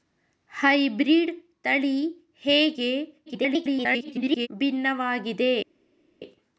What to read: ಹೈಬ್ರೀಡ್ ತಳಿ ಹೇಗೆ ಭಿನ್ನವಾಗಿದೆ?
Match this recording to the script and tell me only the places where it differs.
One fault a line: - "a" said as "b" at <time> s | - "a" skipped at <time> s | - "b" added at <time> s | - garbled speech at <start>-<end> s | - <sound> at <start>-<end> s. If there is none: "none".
- garbled speech at 3.3-4.5 s